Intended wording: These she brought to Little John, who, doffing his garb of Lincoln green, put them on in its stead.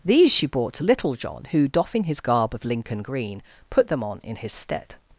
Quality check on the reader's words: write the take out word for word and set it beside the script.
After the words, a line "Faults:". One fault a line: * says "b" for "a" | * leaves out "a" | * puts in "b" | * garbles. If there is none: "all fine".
These she brought to Little John, who, doffing his garb of Lincoln green, put them on in his stead.
Faults:
* says "his" for "its"